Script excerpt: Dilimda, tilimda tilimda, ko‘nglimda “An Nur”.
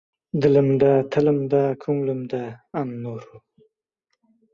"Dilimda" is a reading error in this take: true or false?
false